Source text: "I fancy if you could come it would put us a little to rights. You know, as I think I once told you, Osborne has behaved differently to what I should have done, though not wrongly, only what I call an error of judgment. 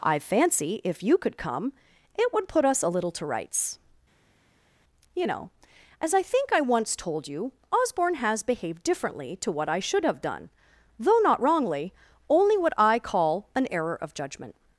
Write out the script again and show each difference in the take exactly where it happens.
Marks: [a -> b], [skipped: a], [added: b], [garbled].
"I fancy if you could come it would put us a little to rights. You know, as I think I once told you, Osborne has behaved differently to what I should have done, though not wrongly, only what I call an error of judgment.